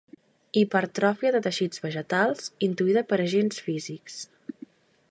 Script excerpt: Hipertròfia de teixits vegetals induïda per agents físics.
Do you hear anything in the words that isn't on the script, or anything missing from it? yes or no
no